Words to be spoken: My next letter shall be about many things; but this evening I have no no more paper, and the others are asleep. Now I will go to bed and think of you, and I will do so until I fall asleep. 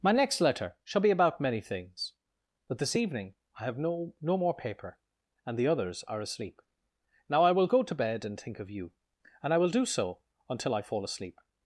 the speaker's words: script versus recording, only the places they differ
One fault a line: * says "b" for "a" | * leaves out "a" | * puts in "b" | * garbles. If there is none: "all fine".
all fine